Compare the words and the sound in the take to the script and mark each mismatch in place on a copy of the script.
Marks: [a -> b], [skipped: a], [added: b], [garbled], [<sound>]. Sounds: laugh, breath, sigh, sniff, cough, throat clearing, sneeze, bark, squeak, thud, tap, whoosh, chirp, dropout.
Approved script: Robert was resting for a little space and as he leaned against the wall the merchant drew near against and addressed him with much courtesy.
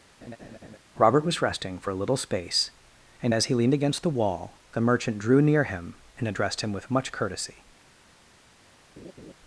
[laugh] Robert was resting for a little space and as he leaned against the wall the merchant drew near [against -> him] and addressed him with much courtesy. [laugh]